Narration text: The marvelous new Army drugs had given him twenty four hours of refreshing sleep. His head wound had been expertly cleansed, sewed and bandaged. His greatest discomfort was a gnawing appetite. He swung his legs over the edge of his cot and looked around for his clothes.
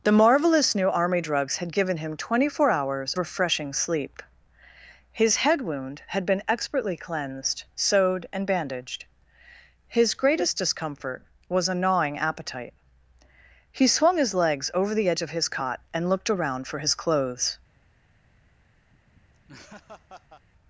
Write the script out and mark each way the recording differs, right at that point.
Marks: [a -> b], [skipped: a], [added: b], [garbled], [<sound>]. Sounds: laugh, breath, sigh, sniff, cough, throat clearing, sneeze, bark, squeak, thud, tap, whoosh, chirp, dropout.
The marvelous new Army drugs had given him twenty four hours [skipped: of] refreshing sleep. His head wound had been expertly cleansed, sewed and bandaged. His greatest discomfort was a gnawing appetite. He swung his legs over the edge of his cot and looked around for his clothes. [laugh]